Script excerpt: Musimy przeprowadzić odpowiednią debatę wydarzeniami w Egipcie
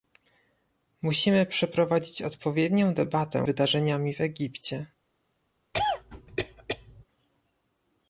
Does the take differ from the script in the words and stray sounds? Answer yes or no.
yes